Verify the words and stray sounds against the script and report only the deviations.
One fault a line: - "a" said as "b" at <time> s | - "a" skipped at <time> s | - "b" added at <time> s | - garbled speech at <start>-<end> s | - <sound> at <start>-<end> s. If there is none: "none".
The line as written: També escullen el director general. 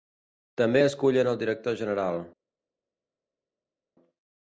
none